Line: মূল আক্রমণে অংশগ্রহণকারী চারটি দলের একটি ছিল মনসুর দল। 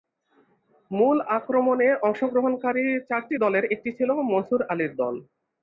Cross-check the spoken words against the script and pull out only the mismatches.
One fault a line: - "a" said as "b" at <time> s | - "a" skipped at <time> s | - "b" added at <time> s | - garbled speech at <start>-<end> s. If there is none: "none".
- "আলীর" added at 4.7 s